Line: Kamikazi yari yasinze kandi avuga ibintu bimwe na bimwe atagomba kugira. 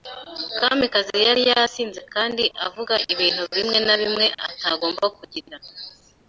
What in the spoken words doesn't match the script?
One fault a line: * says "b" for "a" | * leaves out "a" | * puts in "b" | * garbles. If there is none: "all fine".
all fine